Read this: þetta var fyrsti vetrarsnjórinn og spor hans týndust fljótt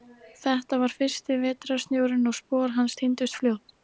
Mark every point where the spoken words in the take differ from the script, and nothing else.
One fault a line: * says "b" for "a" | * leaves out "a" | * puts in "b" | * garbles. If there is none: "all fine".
all fine